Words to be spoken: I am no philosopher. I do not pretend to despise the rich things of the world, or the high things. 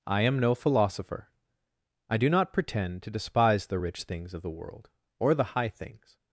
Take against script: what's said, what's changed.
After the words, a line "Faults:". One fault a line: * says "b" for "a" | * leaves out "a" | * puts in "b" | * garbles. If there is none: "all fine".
I am no philosopher. I do not pretend to despise the rich things of the world, or the high things.
Faults:
all fine